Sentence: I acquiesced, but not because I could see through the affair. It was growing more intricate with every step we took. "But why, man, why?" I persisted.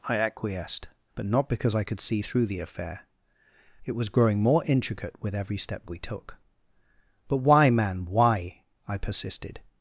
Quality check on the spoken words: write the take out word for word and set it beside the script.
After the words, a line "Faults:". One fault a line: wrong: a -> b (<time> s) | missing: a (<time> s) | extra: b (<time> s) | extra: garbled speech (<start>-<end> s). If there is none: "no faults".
I acquiesced, but not because I could see through the affair. It was growing more intricate with every step we took. "But why, man, why?" I persisted.
Faults:
no faults